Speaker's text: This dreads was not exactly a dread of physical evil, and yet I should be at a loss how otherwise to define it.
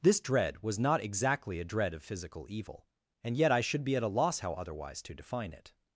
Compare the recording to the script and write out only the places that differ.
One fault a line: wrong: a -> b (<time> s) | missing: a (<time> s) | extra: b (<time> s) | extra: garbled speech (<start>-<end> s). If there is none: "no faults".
wrong: dreads -> dread (0.2 s)